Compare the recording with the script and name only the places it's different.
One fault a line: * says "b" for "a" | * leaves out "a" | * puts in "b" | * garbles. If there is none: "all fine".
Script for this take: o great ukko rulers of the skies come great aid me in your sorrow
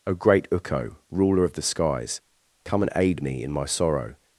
* says "ruler" for "rulers"
* says "and" for "great"
* says "my" for "your"